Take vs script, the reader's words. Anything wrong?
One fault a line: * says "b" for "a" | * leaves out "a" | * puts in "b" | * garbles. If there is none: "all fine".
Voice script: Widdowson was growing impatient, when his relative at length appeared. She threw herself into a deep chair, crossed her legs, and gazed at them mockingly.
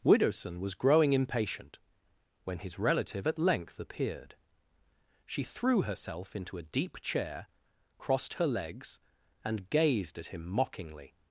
* says "him" for "them"